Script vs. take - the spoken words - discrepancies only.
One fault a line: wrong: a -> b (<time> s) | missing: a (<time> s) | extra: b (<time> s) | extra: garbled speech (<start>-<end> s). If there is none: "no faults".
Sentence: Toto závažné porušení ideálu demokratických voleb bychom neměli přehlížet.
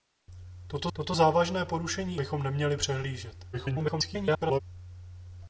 extra: toto (0.9 s)
missing: ideálu demokratických voleb (2.2 s)
extra: garbled speech (3.5-4.6 s)